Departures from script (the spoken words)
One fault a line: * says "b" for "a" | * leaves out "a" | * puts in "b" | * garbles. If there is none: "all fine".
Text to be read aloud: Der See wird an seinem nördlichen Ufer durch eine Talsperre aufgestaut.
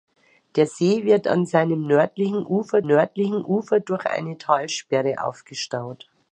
* puts in "nördlichen Ufer"